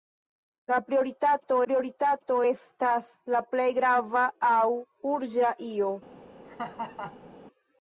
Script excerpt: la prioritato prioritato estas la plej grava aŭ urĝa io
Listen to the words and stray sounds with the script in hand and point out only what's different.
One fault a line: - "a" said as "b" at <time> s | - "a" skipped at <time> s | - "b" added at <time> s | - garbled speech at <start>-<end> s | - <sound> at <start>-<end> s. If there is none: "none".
- laugh at 6.4-7.3 s